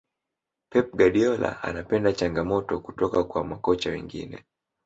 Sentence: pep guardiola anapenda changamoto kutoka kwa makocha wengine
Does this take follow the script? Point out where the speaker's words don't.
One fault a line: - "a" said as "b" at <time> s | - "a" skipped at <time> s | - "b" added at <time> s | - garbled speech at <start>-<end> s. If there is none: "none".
none